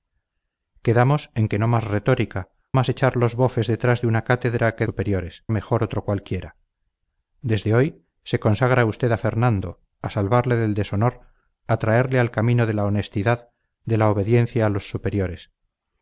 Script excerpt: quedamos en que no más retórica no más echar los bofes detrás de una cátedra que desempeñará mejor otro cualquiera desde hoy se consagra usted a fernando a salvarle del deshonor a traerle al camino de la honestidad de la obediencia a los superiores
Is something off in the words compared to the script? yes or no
yes